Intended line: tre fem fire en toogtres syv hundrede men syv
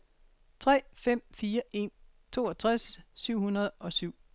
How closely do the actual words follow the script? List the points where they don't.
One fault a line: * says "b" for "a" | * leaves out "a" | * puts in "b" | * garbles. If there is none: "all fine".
* says "og" for "men"